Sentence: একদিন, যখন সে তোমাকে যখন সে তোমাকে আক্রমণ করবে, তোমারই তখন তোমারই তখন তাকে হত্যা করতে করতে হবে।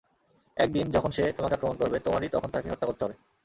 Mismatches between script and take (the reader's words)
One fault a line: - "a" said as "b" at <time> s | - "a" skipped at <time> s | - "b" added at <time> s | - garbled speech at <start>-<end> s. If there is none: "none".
- "যখন সে তোমাকে" skipped at 1.6 s
- "তোমারই তখন" skipped at 2.5 s
- "করতে" skipped at 3.0 s